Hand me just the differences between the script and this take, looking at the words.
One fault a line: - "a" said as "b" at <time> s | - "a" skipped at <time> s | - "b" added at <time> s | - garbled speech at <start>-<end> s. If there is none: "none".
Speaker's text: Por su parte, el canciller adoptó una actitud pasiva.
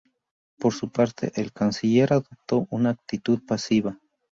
none